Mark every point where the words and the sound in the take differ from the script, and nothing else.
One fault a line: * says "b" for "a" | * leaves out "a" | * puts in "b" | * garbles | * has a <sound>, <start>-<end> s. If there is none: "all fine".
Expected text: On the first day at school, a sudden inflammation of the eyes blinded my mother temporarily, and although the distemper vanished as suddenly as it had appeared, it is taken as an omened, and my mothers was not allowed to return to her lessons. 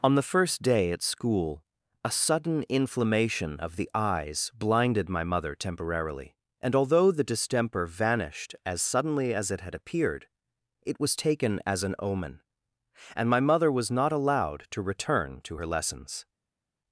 * says "was" for "is"
* says "omen" for "omened"
* says "mother" for "mothers"